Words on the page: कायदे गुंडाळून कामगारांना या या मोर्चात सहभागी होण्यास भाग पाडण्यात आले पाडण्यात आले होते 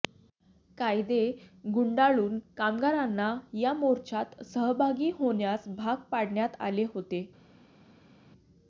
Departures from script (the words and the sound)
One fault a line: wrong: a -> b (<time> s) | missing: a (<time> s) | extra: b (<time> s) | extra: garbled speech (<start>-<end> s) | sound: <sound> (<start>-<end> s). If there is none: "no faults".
missing: या (3.7 s)
missing: पाडण्यात आले (6.9 s)